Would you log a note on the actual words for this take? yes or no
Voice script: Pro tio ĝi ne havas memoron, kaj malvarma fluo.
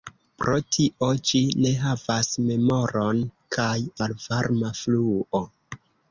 no